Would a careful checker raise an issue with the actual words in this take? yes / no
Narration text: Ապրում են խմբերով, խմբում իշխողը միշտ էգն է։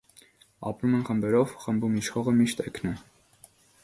no